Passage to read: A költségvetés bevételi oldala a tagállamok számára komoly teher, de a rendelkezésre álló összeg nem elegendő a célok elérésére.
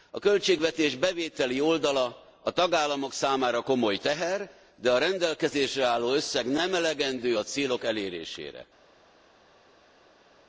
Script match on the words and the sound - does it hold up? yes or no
yes